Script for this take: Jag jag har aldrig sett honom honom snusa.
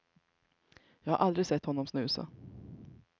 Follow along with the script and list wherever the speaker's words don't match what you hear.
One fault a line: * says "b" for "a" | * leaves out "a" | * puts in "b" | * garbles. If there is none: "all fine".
* leaves out "jag"
* leaves out "honom"